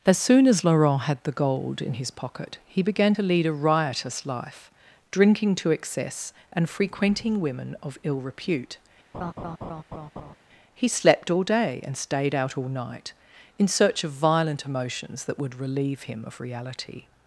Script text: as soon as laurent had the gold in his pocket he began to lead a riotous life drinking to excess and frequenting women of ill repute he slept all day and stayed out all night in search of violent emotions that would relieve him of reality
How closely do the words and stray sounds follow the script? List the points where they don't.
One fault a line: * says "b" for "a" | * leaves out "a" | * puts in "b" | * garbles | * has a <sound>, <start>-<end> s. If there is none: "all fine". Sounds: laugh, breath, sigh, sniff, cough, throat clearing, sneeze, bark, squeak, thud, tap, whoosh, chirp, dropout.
* has a laugh, 9.1-10.4 s